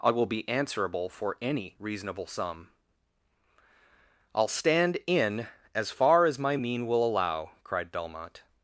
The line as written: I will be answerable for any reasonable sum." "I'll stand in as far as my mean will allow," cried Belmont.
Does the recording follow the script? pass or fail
pass